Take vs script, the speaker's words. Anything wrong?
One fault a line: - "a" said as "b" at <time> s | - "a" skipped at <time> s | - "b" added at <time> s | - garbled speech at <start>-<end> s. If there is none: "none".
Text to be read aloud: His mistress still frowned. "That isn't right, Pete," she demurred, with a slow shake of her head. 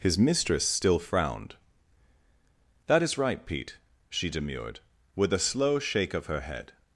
- "isn't" said as "is" at 3.0 s